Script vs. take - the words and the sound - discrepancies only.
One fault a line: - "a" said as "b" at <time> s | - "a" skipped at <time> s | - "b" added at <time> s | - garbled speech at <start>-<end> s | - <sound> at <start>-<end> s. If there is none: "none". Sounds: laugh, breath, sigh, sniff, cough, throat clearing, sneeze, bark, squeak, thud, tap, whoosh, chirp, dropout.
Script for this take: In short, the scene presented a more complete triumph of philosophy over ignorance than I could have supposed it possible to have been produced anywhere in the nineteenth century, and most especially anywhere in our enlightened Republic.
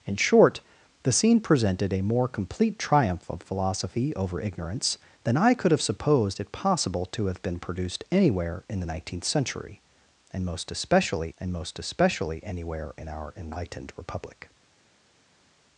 - "and most especially" added at 11.4 s